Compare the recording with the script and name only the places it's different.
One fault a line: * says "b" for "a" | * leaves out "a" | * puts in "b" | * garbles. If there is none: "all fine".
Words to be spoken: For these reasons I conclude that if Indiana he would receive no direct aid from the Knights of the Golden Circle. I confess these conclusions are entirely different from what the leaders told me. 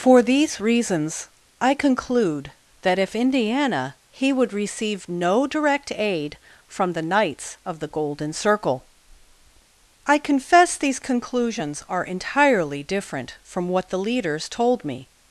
all fine